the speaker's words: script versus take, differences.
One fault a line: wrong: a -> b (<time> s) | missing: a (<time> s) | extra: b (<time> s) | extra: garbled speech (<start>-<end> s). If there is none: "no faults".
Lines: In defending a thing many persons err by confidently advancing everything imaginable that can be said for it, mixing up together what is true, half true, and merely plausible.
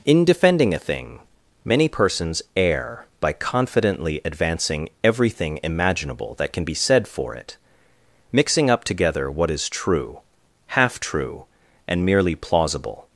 no faults